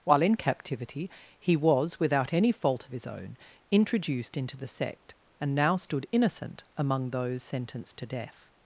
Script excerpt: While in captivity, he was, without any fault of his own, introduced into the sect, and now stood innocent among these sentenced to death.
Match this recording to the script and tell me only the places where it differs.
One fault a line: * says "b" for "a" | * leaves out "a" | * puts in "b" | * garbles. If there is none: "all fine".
* says "those" for "these"